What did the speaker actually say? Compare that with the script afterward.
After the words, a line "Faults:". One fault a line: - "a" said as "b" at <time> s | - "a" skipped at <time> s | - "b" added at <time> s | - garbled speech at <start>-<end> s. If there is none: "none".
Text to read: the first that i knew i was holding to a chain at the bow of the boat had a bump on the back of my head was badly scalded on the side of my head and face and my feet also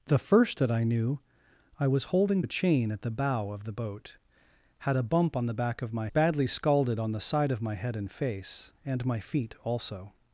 the first that i knew i was holding a chain at the bow of the boat had a bump on the back of my badly scalded on the side of my head and face and my feet also
Faults:
- "to" skipped at 2.4 s
- "head was" skipped at 6.1 s